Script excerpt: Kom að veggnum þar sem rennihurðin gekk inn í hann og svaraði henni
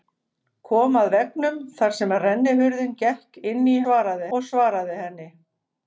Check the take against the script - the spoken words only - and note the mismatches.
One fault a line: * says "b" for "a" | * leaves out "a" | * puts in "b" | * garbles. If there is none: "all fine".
* says "svaraði" for "hann"